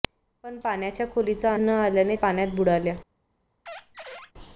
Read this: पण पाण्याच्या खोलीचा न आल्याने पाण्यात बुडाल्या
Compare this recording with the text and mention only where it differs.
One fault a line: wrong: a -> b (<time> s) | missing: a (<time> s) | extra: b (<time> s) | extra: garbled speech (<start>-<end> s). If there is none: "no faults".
no faults